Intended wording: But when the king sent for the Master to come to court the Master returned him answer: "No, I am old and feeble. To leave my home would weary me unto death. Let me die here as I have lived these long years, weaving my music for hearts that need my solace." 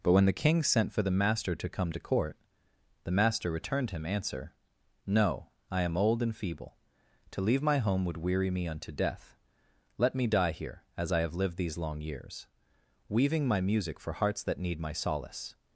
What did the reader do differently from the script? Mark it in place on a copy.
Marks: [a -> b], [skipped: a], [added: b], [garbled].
But when the king sent for the Master to come to court the Master returned him answer: "No, I am old and feeble. To leave my home would weary me unto death. Let me die here as I have lived these long years, weaving my music for hearts that need my solace."